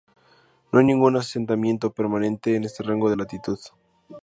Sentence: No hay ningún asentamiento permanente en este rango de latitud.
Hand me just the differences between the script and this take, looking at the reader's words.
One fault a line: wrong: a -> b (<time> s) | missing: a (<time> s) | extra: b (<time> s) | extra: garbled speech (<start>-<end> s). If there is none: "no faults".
no faults